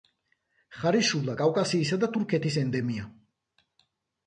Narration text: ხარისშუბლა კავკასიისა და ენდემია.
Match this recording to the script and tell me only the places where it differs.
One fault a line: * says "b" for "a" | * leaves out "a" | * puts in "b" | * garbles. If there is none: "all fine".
* puts in "თურქეთის"